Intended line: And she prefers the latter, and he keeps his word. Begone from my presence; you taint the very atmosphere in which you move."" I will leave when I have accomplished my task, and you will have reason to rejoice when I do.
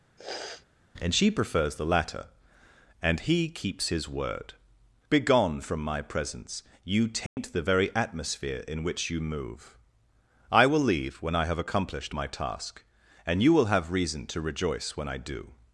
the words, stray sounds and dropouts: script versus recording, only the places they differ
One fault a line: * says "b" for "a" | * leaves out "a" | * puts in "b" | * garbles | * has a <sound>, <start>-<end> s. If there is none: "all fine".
* has a sniff, 0.2-0.7 s
* has a dropout, 7.3-7.4 s